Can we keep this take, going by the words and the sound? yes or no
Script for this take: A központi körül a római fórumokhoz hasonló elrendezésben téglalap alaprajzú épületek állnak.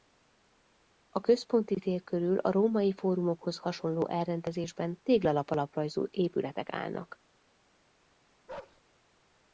no